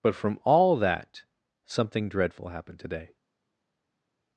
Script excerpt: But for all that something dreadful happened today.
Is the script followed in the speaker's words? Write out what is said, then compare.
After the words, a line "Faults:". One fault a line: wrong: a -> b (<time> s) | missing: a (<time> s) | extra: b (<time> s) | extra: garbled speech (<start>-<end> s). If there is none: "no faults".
But from all that something dreadful happened today.
Faults:
wrong: for -> from (0.1 s)